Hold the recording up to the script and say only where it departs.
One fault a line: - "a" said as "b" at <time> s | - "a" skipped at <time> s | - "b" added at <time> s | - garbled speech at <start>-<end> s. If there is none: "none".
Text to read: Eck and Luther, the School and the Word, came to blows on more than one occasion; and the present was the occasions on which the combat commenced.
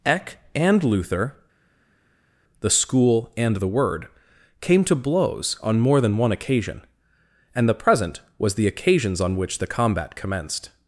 none